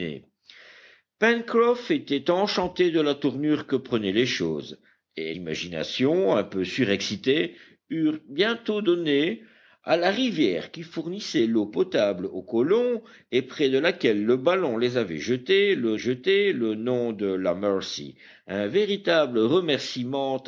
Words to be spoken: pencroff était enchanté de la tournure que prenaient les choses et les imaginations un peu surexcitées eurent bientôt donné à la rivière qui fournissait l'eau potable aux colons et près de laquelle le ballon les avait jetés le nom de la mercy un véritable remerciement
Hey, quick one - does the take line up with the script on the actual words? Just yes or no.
no